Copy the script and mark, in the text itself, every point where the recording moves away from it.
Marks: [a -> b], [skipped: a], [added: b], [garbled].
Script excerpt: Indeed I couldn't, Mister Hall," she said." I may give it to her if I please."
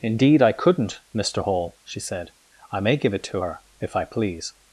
Indeed I couldn't, Mister Hall," she said." I may give it to her if I please."